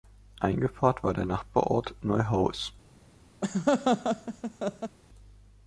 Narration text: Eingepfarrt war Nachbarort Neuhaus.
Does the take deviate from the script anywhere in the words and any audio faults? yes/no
yes